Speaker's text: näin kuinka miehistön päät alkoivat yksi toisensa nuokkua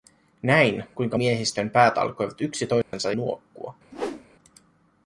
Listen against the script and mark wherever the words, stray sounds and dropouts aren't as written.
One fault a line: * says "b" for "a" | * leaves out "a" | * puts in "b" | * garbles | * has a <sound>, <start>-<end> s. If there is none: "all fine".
* has a dropout, 2.8-2.9 s
* has a whoosh, 3.9-4.3 s